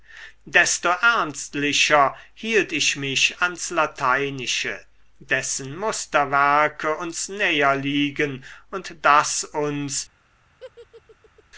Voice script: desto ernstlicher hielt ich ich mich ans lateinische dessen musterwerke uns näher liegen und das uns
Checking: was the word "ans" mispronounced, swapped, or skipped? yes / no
no